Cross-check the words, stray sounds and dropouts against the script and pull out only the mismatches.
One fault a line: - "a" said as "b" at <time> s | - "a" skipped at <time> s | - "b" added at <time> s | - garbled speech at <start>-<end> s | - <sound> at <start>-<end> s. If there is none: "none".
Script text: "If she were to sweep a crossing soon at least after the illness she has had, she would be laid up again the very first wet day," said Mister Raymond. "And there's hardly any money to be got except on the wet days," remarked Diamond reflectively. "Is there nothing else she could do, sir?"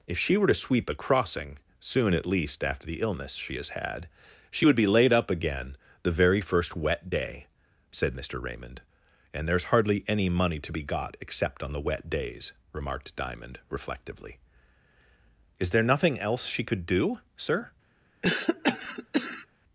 - cough at 18.2-19.5 s